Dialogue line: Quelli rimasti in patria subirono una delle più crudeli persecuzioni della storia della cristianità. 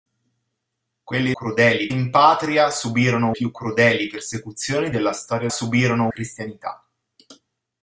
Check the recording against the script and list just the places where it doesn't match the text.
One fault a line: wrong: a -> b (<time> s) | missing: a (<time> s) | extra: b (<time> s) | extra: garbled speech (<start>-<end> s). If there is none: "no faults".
wrong: rimasti -> crudeli (1.3 s)
missing: una delle (3.3 s)
wrong: della -> subirono (5.5 s)